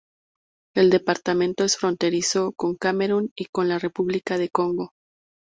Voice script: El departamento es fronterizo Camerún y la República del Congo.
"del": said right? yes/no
yes